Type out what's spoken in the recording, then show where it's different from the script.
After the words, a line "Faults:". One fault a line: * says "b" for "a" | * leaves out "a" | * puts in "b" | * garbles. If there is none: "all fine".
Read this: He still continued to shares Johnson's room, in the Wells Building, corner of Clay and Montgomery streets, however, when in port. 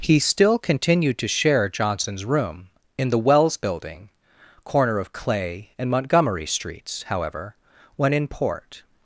He still continued to share Johnson's room, in the Wells Building, corner of Clay and Montgomery streets, however, when in port.
Faults:
* says "share" for "shares"